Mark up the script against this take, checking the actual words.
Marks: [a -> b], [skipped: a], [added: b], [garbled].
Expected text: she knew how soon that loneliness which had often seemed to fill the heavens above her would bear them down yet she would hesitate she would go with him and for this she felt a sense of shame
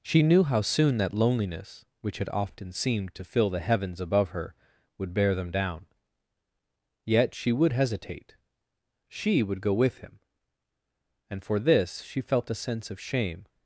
she knew how soon that loneliness which had often seemed to fill the heavens above her would bear them down yet she would hesitate she would go with him and for this she felt a sense of shame